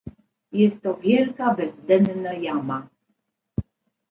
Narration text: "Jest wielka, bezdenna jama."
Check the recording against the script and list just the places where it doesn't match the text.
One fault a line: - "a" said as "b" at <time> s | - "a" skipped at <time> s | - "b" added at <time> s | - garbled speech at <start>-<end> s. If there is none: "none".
- "to" added at 0.8 s